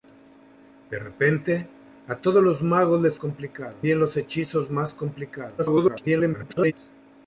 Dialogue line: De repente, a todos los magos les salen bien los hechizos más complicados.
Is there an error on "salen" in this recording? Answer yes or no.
yes